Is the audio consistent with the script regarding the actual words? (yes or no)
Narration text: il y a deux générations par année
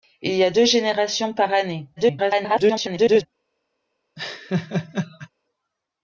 no